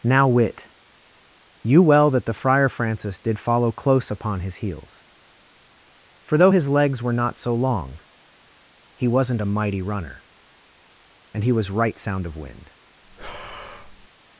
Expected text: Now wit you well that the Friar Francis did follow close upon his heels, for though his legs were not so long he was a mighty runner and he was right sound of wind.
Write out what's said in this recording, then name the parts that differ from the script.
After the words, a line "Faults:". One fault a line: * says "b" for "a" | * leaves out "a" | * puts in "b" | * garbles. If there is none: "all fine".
Now wit you well that the Friar Francis did follow close upon his heels, for though his legs were not so long he wasn't a mighty runner and he was right sound of wind.
Faults:
* says "wasn't" for "was"